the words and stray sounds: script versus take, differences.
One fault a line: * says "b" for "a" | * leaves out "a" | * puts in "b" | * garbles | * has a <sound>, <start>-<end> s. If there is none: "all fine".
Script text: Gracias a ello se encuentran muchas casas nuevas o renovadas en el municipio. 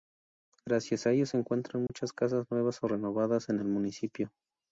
* has a dropout, 1.9-1.9 s